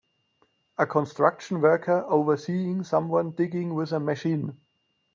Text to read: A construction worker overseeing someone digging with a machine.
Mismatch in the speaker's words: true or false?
false